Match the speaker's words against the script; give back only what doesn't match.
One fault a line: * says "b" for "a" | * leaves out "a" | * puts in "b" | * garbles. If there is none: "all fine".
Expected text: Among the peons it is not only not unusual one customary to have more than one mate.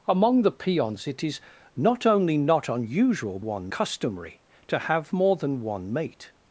all fine